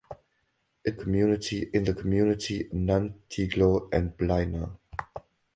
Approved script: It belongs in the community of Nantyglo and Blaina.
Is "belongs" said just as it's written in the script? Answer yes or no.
no